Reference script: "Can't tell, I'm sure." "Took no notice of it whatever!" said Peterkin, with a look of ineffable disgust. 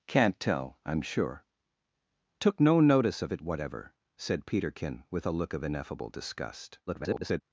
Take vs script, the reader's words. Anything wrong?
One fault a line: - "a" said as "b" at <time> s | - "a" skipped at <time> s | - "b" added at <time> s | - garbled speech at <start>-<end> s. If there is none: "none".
- garbled speech at 6.9-7.4 s